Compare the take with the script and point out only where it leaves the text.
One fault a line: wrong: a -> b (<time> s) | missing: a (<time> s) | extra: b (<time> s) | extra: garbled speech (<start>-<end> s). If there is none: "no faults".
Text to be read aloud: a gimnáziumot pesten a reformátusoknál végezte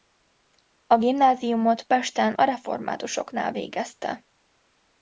no faults